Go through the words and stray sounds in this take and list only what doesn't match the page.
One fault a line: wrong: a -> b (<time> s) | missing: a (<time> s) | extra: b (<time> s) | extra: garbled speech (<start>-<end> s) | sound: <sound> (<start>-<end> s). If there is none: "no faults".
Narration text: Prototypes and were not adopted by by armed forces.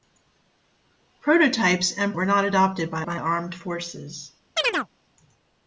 sound: chirp (4.6-4.9 s)